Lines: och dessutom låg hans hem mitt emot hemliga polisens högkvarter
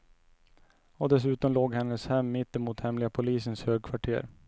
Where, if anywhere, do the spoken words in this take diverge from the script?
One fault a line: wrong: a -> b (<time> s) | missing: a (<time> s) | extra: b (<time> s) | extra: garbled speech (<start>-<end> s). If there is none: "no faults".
wrong: hans -> hennes (1.7 s)